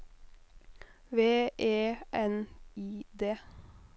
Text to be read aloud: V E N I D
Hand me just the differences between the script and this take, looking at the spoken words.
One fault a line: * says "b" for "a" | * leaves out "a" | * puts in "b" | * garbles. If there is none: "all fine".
all fine